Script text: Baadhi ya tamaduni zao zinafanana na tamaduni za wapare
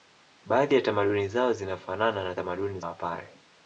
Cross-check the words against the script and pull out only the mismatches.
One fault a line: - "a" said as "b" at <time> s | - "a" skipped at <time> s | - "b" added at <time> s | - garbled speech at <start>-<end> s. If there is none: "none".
- "za" skipped at 2.8 s